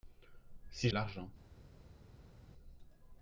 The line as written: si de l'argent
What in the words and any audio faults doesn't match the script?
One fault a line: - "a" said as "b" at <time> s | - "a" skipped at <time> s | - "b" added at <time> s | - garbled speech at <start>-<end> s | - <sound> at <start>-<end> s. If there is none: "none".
none